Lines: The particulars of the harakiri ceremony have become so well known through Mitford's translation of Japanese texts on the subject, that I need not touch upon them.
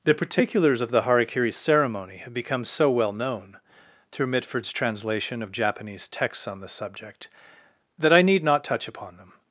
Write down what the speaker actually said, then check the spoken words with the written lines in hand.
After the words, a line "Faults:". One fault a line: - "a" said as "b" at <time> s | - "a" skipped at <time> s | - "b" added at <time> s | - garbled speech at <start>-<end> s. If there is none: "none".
The particulars of the harakiri ceremony have become so well known through Mitford's translation of Japanese texts on the subject, that I need not touch upon them.
Faults:
none